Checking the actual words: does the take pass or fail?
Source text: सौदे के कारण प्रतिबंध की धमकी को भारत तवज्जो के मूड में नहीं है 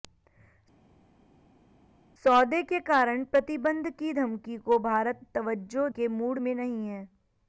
pass